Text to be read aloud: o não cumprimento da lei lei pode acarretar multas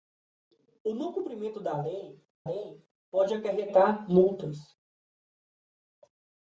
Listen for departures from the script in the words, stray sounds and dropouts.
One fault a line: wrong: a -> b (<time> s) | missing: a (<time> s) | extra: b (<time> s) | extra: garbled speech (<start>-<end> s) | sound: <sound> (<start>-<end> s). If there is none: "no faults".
no faults